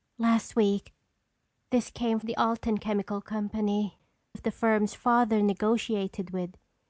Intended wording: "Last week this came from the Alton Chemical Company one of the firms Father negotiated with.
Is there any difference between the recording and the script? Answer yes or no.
yes